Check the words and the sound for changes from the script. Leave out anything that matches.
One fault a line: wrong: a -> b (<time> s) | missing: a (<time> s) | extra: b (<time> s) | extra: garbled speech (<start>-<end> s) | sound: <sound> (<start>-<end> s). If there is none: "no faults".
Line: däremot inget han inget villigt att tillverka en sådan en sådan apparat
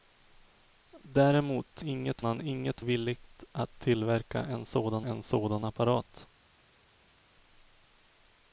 no faults